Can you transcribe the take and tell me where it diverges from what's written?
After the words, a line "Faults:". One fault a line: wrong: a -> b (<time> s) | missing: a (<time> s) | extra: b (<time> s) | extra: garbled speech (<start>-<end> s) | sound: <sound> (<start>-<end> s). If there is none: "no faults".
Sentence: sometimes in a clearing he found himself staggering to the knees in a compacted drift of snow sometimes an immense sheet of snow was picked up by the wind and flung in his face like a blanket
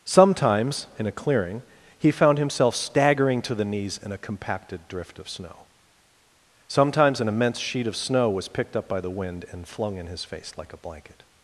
sometimes in a clearing he found himself staggering to the knees in a compacted drift of snow sometimes an immense sheet of snow was picked up by the wind and flung in his face like a blanket
Faults:
no faults